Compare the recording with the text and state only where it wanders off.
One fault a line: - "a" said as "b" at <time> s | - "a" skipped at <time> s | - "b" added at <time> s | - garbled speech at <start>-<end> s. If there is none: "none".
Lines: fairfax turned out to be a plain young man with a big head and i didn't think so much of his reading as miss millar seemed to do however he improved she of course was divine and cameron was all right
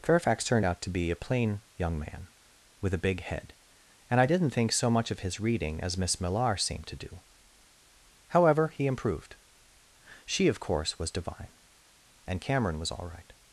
none